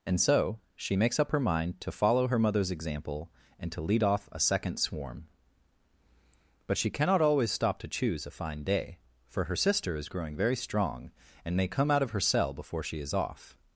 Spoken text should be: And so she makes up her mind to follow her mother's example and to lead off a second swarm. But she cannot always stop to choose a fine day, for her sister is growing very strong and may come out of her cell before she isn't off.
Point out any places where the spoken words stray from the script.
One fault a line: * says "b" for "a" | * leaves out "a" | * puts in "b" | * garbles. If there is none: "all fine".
* says "is" for "isn't"